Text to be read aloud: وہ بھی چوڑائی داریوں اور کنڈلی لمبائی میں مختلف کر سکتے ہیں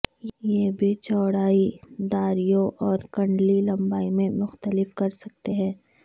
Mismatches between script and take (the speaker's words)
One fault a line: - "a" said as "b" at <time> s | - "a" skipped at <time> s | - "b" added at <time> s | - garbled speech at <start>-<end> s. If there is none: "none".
- "وہ" said as "یہ" at 0.4 s